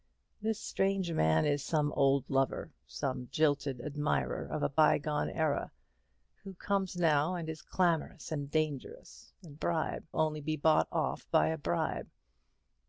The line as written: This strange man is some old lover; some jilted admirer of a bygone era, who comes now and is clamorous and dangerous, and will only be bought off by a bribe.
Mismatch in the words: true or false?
true